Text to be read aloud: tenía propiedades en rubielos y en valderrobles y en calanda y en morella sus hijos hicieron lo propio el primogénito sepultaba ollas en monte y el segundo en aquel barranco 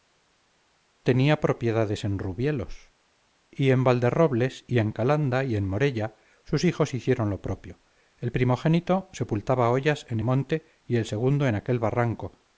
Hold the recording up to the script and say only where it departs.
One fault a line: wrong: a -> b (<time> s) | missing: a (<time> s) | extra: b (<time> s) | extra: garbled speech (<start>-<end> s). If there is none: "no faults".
no faults